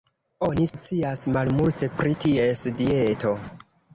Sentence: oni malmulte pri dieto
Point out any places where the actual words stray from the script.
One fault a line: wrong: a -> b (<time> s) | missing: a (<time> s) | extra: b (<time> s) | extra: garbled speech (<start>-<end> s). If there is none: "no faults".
extra: scias (0.7 s)
extra: ties (2.3 s)